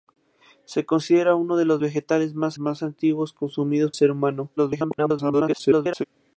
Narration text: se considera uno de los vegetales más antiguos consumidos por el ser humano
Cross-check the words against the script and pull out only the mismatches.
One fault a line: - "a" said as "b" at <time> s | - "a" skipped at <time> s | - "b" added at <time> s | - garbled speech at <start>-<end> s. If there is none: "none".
- "más" added at 2.6 s
- "por el" skipped at 3.9 s
- garbled speech at 4.6-6.0 s